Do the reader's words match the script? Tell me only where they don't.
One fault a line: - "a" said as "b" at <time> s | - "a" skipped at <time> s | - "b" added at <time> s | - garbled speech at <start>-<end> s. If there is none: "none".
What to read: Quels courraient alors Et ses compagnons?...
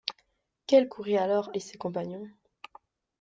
none